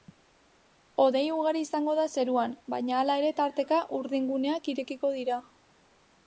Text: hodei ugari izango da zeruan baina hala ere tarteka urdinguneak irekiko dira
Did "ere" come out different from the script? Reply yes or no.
no